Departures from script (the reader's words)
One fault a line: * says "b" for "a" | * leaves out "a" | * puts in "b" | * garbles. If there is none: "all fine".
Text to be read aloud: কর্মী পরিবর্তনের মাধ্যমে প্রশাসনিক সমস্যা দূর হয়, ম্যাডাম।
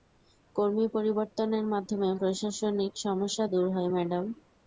all fine